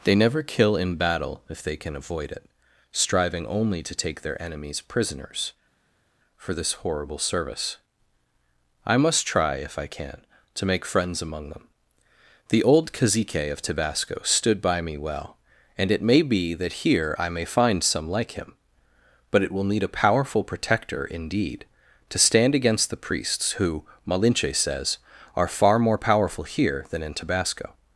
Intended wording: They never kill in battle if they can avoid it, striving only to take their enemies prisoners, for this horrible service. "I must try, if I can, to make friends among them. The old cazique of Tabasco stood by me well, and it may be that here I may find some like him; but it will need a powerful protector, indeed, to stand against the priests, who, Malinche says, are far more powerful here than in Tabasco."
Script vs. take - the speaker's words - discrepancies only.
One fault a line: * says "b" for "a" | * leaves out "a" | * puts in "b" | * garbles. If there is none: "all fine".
all fine